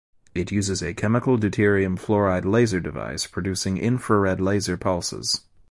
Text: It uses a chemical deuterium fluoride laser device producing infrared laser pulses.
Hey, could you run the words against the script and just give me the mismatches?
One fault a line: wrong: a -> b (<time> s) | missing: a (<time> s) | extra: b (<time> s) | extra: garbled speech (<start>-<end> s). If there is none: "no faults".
no faults